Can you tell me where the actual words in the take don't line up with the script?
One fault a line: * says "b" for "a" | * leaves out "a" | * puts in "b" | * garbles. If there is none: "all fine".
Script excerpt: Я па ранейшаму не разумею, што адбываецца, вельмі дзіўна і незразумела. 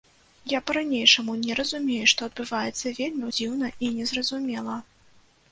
all fine